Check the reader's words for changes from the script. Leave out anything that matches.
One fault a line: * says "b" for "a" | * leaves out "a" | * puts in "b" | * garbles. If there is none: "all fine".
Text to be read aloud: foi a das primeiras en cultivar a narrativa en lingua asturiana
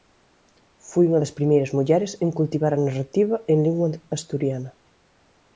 * says "unha" for "a"
* puts in "mulleres"